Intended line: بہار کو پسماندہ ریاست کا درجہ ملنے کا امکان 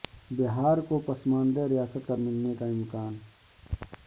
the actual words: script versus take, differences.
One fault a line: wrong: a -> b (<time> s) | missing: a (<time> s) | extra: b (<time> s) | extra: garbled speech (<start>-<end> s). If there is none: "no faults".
missing: درجہ (2.1 s)